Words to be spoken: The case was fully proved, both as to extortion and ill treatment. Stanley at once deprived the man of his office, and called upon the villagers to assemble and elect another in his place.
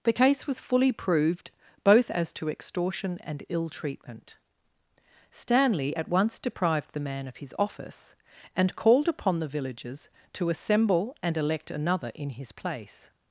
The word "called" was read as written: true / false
true